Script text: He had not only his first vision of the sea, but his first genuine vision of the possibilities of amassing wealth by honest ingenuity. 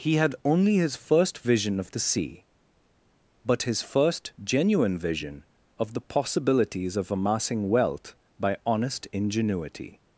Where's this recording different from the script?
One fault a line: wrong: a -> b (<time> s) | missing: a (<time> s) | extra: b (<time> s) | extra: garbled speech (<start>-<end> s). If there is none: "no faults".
missing: not (0.3 s)